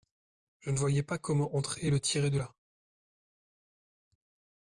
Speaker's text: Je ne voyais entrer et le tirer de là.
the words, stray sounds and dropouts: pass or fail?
fail